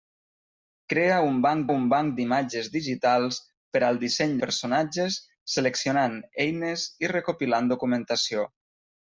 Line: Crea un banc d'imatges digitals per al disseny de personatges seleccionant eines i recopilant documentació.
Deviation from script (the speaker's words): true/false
true